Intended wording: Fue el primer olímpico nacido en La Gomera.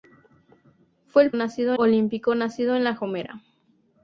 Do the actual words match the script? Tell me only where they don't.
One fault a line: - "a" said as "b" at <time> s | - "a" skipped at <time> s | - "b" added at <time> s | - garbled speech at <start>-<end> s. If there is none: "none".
- "primer" said as "nacido" at 1.3 s